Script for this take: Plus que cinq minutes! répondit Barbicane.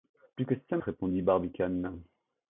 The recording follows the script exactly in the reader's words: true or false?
false